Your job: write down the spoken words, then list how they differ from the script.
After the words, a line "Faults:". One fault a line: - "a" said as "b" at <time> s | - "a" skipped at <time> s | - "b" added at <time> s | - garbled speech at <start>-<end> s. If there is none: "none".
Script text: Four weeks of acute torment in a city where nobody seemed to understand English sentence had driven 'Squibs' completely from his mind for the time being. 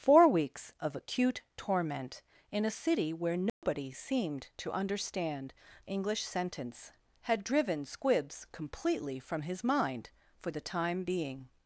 Four weeks of acute torment in a city where nobody seemed to understand English sentence had driven 'Squibs' completely from his mind for the time being.
Faults:
none